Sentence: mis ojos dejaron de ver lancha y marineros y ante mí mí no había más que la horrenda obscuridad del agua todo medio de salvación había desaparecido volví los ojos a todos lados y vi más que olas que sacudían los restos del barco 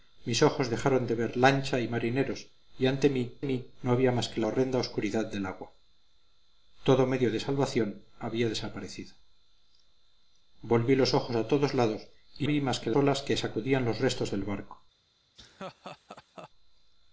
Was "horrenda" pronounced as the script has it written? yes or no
yes